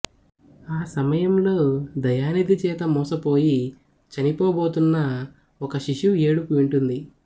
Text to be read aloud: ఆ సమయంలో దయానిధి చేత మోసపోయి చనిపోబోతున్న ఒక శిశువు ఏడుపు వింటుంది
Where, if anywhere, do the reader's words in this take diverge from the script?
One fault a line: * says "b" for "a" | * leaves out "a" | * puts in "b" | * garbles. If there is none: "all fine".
all fine